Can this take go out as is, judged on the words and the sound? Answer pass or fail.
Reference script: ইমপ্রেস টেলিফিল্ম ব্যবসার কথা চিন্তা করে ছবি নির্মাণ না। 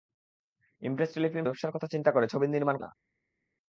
pass